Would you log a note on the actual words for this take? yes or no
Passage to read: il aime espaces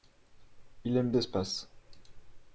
no